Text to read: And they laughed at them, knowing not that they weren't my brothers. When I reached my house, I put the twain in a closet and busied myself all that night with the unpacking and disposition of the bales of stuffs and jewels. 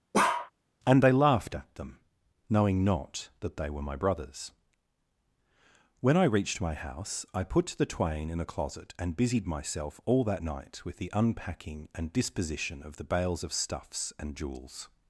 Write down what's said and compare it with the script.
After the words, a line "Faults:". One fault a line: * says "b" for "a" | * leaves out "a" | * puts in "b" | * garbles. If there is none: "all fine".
And they laughed at them, knowing not that they were my brothers. When I reached my house, I put the twain in a closet and busied myself all that night with the unpacking and disposition of the bales of stuffs and jewels.
Faults:
* says "were" for "weren't"